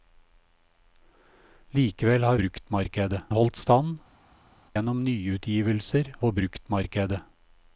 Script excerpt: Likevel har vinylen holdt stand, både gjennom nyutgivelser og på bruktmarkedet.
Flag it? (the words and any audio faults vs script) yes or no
yes